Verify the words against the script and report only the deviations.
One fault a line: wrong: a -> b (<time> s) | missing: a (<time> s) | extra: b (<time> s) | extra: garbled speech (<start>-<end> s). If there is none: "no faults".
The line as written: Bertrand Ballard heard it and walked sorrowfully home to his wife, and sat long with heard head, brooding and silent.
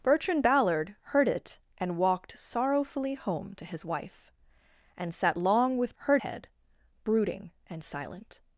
no faults